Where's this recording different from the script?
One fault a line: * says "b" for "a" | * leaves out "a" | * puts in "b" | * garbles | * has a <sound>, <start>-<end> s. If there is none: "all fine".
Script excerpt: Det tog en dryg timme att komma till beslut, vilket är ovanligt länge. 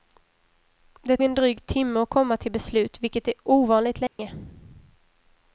* leaves out "tog"
* has a dropout, 4.1-4.2 s